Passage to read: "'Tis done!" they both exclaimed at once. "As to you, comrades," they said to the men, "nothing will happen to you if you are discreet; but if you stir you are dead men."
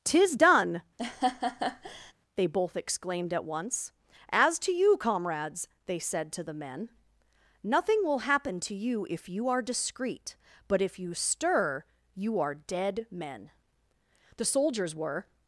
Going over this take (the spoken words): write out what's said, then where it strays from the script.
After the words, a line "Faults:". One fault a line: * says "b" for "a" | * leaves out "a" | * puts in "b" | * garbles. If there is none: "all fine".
"'Tis done!" they both exclaimed at once. "As to you, comrades," they said to the men, "nothing will happen to you if you are discreet; but if you stir you are dead men." The soldiers were
Faults:
* puts in "The soldiers were"